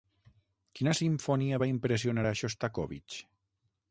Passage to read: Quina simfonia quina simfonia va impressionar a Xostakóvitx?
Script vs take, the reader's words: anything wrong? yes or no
yes